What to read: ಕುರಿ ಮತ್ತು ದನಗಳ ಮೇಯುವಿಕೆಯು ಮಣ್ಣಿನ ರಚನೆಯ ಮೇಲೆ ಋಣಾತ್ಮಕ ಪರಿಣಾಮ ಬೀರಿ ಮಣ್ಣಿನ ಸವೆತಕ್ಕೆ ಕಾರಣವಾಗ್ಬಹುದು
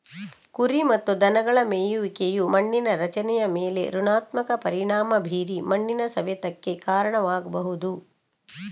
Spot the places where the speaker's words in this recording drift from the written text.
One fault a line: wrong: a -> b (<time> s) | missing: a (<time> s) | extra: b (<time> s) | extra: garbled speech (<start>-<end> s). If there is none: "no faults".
no faults